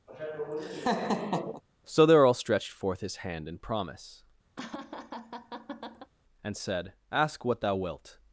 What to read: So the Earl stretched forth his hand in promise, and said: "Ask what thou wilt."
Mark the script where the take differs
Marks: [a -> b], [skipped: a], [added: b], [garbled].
So the Earl stretched forth his hand in promise, and said: "Ask what thou wilt."